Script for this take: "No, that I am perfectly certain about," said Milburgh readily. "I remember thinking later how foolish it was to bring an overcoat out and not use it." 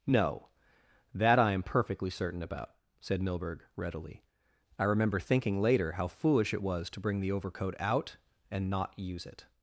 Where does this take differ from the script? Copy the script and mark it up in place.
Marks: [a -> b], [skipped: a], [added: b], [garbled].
"No, that I am perfectly certain about," said Milburgh readily. "I remember thinking later how foolish it was to bring [an -> the] overcoat out and not use it."